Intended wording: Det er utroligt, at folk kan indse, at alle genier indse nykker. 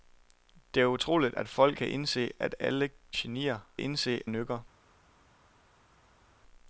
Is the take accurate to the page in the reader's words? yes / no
yes